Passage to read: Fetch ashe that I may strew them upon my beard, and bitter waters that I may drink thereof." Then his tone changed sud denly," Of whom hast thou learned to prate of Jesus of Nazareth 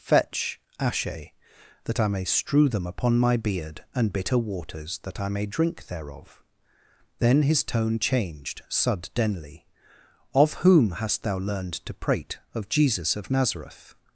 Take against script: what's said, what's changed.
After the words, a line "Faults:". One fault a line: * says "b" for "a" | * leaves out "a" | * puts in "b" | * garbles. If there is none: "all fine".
Fetch ashe that I may strew them upon my beard, and bitter waters that I may drink thereof." Then his tone changed sud denly," Of whom hast thou learned to prate of Jesus of Nazareth
Faults:
all fine